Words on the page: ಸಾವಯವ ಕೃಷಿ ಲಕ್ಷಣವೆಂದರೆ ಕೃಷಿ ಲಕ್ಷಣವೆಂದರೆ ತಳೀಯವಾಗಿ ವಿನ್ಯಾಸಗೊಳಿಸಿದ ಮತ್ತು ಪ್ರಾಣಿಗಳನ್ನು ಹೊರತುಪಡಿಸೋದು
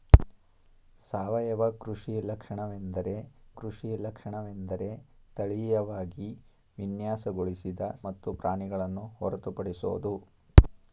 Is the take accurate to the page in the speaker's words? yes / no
yes